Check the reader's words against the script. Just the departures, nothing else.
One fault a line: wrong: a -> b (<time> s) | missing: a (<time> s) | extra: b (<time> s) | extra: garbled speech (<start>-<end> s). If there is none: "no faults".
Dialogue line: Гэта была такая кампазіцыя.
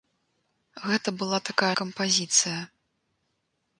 no faults